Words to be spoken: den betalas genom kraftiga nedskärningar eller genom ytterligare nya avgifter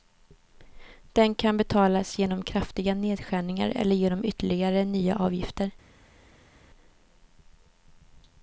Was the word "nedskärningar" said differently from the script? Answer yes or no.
no